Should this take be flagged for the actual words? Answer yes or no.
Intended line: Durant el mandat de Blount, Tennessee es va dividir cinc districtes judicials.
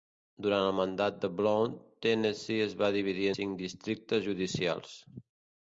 no